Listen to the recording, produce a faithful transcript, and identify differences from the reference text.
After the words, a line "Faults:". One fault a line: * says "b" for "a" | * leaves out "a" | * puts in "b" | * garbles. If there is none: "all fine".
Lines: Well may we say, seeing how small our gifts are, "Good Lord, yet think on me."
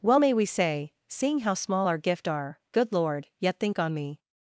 Well may we say, seeing how small our gift are, "Good Lord, yet think on me."
Faults:
* says "gift" for "gifts"